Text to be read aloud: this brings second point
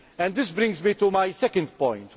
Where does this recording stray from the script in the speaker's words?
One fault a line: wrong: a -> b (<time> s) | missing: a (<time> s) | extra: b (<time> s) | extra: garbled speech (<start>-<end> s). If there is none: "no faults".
extra: me to my (0.8 s)